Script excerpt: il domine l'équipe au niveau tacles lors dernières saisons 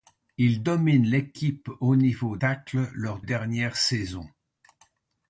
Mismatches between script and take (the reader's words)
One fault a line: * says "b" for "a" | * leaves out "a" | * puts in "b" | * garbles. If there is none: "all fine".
all fine